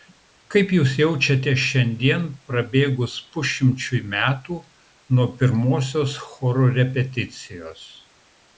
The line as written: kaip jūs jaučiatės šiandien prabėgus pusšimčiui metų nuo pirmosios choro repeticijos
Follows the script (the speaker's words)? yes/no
yes